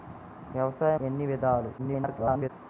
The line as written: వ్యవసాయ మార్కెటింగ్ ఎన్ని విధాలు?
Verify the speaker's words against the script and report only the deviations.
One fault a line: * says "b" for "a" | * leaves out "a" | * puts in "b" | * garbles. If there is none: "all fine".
* leaves out "మార్కెటింగ్"
* garbles